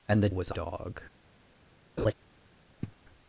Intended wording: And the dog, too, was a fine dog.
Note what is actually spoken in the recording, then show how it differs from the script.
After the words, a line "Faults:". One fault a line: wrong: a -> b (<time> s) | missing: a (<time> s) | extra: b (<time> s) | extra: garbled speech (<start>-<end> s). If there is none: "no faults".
And the was a dog.
Faults:
missing: dog too (0.3 s)
missing: fine (0.6 s)